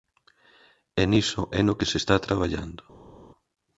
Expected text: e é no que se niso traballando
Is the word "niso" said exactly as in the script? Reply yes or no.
no